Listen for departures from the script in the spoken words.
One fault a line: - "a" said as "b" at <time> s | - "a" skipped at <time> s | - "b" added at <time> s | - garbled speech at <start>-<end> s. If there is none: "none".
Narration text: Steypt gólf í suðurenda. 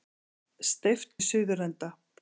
- "gólf" skipped at 1.1 s